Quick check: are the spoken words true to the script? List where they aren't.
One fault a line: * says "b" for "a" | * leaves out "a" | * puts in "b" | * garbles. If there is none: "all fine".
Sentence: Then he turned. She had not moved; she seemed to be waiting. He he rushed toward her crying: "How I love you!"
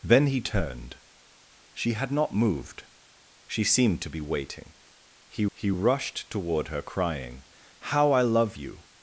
all fine